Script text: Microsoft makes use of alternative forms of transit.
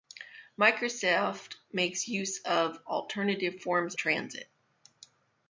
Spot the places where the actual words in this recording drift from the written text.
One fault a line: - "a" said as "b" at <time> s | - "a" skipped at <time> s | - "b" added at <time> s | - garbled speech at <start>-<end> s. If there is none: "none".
- "of" skipped at 3.9 s